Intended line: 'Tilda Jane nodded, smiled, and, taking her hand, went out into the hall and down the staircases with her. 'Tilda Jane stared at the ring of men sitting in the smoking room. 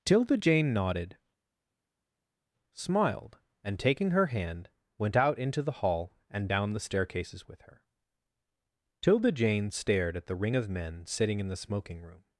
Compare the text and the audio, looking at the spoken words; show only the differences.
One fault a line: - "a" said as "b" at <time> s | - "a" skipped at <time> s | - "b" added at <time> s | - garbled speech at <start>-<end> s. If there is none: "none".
none